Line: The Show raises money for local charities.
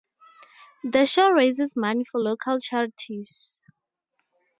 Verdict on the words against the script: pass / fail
pass